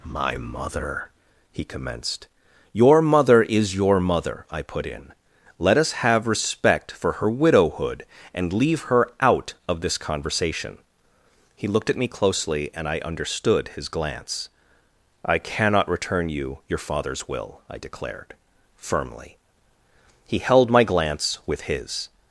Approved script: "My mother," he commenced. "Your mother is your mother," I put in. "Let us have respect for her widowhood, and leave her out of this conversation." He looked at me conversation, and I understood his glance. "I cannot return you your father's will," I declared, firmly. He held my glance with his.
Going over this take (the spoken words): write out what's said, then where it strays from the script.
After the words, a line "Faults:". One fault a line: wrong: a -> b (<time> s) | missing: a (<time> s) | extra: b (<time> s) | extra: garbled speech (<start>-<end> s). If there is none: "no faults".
"My mother," he commenced. "Your mother is your mother," I put in. "Let us have respect for her widowhood, and leave her out of this conversation." He looked at me closely, and I understood his glance. "I cannot return you your father's will," I declared, firmly. He held my glance with his.
Faults:
wrong: conversation -> closely (12.1 s)